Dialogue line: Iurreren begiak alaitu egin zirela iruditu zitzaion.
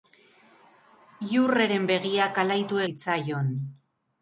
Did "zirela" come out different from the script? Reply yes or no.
yes